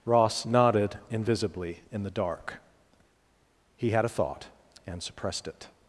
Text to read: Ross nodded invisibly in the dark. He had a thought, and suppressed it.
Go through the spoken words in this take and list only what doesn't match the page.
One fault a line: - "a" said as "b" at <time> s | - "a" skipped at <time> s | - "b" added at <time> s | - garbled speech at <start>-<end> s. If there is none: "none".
none